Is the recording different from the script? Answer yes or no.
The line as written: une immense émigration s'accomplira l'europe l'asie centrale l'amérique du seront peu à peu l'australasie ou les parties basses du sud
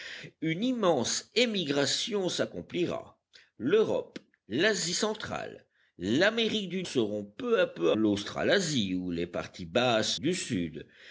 no